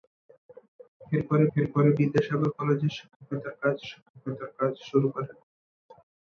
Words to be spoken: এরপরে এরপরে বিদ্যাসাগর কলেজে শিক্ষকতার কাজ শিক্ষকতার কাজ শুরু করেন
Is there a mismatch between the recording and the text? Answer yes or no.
no